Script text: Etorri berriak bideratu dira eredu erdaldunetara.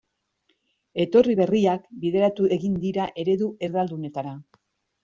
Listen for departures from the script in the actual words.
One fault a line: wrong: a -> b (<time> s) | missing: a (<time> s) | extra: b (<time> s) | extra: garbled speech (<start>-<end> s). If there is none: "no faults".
extra: egin (2.6 s)